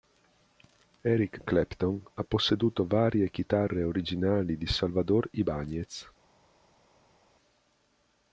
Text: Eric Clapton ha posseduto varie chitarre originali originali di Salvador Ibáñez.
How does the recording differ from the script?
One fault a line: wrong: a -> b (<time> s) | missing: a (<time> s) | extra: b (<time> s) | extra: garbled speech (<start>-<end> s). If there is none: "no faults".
missing: originali (4.6 s)